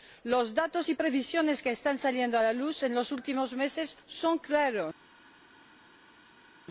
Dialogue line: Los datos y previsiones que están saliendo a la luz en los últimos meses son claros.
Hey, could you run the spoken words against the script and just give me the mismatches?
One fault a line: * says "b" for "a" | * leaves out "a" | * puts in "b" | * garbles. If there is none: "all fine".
all fine